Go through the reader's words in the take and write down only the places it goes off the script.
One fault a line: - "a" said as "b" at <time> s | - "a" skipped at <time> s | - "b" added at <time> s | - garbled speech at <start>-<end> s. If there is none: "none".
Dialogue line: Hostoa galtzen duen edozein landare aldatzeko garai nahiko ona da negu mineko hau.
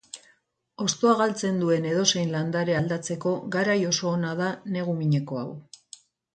- "nahiko" said as "oso" at 3.9 s